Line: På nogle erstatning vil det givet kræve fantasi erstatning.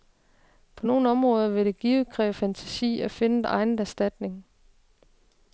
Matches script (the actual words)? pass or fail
fail